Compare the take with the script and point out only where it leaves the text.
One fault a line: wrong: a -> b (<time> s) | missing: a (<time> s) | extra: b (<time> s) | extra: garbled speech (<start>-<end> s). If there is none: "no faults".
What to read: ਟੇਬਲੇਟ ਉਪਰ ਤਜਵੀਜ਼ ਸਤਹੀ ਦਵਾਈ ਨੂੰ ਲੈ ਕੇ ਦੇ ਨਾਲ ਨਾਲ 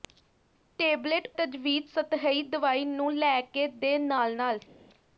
missing: ਉਪਰ (1.3 s)